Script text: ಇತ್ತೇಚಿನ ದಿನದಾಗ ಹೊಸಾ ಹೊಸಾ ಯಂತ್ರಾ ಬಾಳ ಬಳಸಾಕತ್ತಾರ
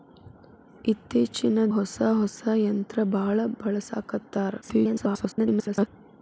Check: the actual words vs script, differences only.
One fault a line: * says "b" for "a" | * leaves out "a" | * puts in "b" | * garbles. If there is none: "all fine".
* leaves out "ದಿನದಾಗ"
* garbles